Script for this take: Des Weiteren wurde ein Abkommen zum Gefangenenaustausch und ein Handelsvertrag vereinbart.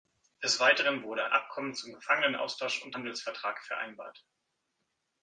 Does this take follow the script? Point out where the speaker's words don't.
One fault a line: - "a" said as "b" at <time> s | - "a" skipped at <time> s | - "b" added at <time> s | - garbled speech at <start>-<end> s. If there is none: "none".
- "ein" skipped at 1.2 s
- "ein" skipped at 3.0 s